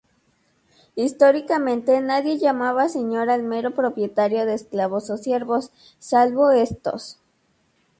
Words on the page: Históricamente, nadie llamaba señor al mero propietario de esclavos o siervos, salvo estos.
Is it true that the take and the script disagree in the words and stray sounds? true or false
false